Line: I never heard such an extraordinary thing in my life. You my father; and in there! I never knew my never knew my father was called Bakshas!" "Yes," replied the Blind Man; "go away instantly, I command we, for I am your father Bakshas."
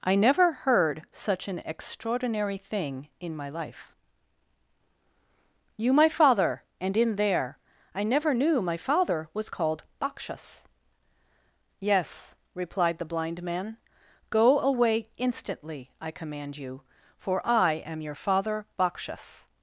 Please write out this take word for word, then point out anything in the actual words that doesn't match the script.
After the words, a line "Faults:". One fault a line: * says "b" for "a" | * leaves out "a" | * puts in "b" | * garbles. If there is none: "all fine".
I never heard such an extraordinary thing in my life. You my father; and in there! I never knew my father was called Bakshas!" "Yes," replied the Blind Man; "go away instantly, I command you, for I am your father Bakshas."
Faults:
* leaves out "never knew my"
* says "you" for "we"